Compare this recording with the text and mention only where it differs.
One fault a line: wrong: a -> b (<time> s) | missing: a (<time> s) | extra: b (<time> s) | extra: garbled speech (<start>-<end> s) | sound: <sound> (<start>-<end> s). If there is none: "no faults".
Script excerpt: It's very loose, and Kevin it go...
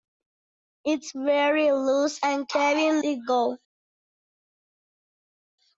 no faults